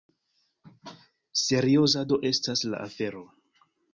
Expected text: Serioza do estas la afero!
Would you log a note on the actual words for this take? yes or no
no